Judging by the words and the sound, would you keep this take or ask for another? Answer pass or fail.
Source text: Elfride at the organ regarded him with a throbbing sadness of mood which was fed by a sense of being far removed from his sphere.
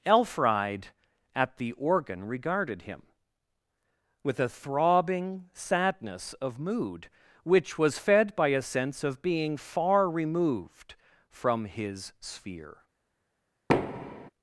fail